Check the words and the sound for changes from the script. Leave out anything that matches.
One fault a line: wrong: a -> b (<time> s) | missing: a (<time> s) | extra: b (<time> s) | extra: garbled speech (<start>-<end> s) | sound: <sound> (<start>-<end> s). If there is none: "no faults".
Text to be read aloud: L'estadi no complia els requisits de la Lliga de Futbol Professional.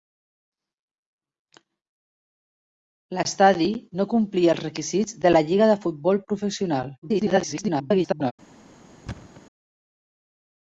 extra: garbled speech (7.0-8.3 s)
sound: thud (9.1-9.4 s)